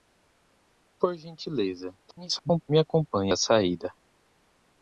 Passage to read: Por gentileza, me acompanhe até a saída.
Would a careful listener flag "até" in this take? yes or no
yes